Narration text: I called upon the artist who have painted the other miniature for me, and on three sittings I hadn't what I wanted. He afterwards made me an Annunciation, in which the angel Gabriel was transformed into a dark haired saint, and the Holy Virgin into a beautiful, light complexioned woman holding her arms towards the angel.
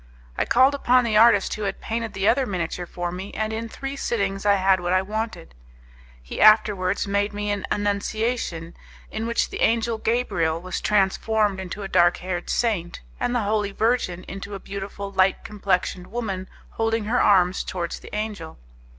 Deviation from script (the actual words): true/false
true